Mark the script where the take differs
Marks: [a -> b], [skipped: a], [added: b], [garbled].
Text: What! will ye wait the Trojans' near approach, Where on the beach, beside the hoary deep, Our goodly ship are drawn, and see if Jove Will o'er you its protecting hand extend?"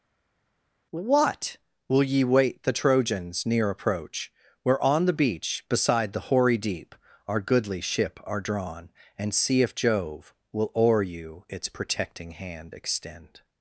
What! will ye wait the Trojans' near approach, Where on the beach, beside the hoary deep, Our goodly ship are drawn, and see if Jove Will o'er you its protecting hand extend?"